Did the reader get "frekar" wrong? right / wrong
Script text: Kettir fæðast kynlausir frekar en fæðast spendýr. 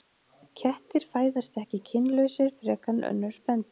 right